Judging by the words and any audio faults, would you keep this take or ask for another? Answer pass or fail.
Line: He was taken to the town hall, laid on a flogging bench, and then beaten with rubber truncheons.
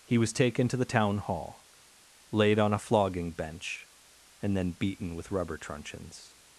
pass